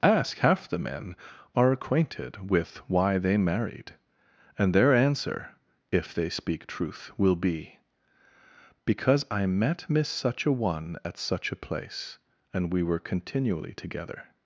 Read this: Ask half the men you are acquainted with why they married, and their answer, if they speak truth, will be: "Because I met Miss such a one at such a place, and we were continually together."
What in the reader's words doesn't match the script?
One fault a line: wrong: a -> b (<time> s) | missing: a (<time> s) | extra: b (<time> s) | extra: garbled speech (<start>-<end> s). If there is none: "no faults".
missing: you (1.1 s)